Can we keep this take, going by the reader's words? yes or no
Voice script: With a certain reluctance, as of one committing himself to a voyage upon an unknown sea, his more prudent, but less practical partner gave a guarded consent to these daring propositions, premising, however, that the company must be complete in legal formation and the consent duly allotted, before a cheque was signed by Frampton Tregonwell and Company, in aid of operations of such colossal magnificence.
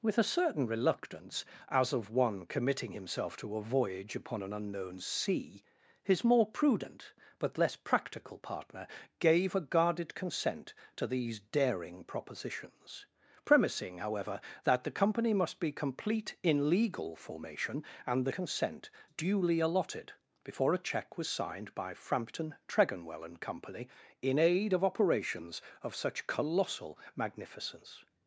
yes